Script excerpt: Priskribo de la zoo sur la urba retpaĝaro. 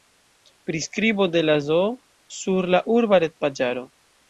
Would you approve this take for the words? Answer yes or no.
yes